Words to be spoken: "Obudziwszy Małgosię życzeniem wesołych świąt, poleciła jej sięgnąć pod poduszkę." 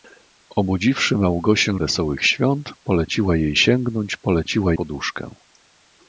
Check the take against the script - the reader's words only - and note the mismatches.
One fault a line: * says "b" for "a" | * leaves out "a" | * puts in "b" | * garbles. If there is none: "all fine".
* leaves out "życzeniem"
* says "poleciła" for "pod"